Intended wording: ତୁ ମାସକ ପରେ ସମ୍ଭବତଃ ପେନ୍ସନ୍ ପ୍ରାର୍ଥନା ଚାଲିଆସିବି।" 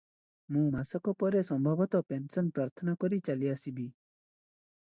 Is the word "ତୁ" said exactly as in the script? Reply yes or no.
no